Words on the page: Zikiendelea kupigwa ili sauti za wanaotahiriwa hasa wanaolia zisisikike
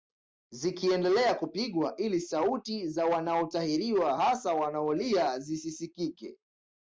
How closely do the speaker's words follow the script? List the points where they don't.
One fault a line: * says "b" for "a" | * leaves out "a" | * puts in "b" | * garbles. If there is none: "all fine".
all fine